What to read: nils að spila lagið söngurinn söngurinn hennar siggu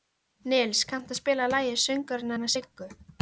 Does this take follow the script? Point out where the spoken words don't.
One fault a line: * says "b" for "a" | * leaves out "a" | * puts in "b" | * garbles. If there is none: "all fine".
* puts in "kanntu"
* leaves out "söngurinn"